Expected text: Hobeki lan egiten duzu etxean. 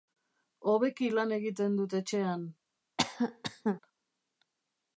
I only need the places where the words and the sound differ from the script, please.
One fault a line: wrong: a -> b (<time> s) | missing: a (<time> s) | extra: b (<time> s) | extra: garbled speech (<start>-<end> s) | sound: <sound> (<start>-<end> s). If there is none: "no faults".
wrong: duzu -> dut (1.8 s)
sound: cough (3.0-3.8 s)